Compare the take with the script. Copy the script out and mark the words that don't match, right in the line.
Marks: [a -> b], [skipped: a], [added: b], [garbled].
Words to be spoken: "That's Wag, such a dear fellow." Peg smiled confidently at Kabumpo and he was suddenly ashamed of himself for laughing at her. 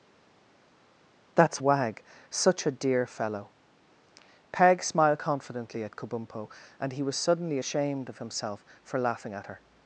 "That's Wag, such a dear fellow." Peg smiled confidently at Kabumpo and he was suddenly ashamed of himself for laughing at her.